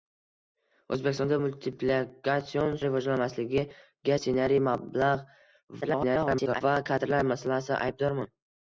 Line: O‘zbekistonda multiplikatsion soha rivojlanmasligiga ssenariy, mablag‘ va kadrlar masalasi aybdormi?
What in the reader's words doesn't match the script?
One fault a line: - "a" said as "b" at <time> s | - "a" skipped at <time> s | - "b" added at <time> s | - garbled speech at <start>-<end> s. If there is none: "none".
- "soha" skipped at 2.8 s
- garbled speech at 5.8-6.6 s